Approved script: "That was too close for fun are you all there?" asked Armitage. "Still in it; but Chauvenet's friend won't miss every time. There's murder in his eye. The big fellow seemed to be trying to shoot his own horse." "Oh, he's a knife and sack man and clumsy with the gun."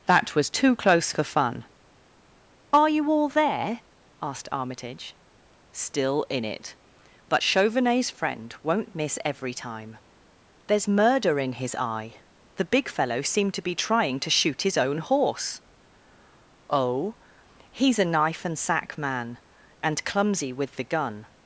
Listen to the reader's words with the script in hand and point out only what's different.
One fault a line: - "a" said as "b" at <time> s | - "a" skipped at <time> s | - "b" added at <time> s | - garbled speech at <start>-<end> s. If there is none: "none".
none